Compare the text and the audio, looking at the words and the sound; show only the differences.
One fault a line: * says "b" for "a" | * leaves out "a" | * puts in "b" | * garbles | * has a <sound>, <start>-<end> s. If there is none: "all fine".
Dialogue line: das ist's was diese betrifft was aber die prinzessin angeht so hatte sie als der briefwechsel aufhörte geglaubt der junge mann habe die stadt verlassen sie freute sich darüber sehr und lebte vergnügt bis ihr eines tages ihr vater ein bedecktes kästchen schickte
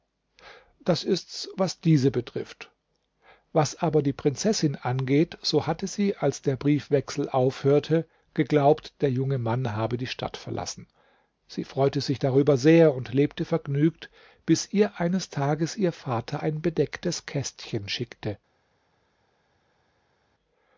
all fine